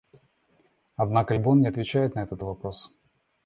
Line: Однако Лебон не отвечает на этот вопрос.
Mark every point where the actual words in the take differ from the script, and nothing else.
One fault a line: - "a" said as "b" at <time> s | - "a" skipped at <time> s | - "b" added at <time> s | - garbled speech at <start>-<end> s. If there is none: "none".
none